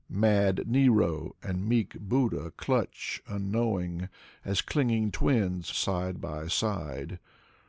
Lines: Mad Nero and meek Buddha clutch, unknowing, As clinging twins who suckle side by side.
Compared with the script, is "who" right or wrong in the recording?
wrong